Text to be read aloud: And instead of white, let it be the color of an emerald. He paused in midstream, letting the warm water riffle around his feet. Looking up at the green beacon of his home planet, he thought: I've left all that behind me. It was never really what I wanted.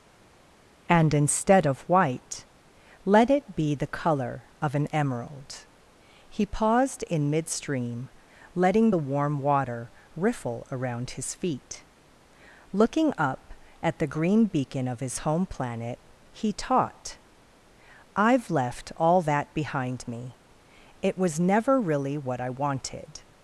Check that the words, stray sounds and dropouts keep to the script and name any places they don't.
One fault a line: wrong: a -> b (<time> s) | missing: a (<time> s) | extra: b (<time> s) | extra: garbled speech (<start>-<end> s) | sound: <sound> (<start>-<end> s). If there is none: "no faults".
wrong: thought -> taught (16.5 s)